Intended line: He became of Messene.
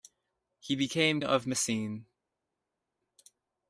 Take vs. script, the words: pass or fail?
pass